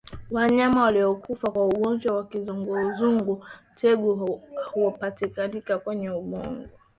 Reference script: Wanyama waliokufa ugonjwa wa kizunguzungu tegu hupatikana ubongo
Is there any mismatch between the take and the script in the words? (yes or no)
yes